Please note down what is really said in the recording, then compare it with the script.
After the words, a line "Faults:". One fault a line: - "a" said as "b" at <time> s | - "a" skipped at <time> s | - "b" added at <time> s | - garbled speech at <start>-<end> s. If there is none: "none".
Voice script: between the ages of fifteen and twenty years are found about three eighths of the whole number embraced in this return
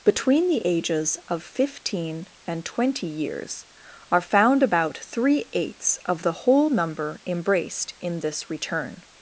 between the ages of fifteen and twenty years are found about three eighths of the whole number embraced in this return
Faults:
none